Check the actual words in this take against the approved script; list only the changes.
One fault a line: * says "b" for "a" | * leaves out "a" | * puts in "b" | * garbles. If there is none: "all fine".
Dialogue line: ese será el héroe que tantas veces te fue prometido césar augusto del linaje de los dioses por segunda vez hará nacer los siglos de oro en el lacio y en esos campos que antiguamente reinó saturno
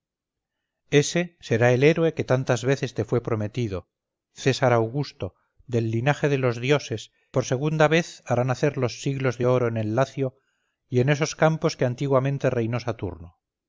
all fine